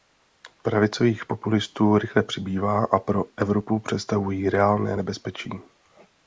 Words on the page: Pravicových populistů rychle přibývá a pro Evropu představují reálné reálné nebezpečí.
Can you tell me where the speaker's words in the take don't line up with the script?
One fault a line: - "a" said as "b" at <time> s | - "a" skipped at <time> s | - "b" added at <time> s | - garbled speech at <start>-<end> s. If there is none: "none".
- "reálné" skipped at 5.0 s